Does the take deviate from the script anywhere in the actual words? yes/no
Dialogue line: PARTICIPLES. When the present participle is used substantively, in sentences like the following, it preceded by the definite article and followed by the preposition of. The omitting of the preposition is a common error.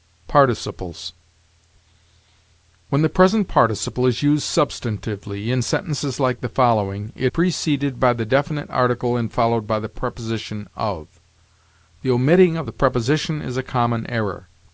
no